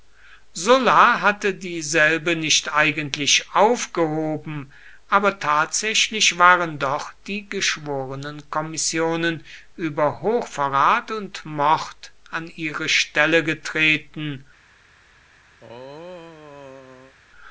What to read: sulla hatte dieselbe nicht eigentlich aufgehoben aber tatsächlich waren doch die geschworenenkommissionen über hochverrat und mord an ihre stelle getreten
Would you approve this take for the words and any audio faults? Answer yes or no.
no